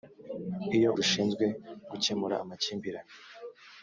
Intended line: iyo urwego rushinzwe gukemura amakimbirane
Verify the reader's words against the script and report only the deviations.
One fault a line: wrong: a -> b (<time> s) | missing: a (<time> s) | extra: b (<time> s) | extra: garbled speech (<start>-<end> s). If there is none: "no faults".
missing: urwego (0.9 s)